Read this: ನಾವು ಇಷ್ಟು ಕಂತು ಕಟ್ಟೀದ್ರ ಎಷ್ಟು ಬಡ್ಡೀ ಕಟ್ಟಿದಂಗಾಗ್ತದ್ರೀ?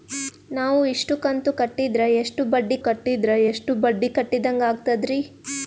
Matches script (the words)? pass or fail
fail